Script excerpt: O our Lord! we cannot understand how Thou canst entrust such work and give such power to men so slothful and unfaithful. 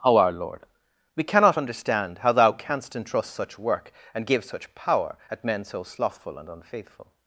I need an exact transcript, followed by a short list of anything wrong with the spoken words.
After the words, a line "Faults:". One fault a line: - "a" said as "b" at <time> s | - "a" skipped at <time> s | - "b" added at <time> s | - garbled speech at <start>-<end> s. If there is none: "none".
O our Lord! we cannot understand how Thou canst entrust such work and give such power at men so slothful and unfaithful.
Faults:
- "to" said as "at" at 5.3 s